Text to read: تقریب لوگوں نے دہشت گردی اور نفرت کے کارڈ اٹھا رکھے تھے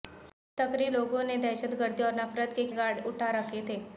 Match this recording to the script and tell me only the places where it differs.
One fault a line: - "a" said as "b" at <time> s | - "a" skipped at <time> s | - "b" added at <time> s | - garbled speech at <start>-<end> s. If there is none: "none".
none